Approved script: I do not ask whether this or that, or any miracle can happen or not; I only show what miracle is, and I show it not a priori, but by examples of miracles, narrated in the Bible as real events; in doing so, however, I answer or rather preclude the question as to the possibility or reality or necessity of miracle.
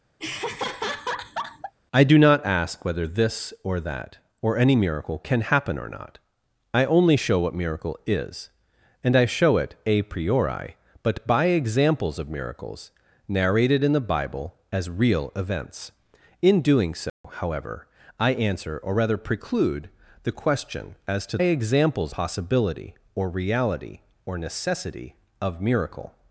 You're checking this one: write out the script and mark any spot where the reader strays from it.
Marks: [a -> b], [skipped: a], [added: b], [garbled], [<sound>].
[laugh] I do not ask whether this or that, or any miracle can happen or not; I only show what miracle is, and I show it [skipped: not] a priori, but by examples of miracles, narrated in the Bible as real events; in doing so, [dropout] however, I answer or rather preclude the question as to [the -> examples] possibility or reality or necessity of miracle.